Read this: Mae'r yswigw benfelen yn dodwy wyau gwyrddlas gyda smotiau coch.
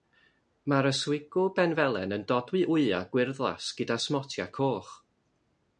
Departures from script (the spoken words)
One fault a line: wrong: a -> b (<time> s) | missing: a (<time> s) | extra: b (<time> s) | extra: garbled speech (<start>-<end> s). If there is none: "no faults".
no faults